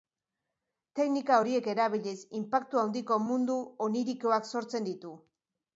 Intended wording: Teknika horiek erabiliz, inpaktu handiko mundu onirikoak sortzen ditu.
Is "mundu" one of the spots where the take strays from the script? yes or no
no